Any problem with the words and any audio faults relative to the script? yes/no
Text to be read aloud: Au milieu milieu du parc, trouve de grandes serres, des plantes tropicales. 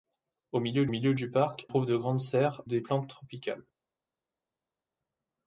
no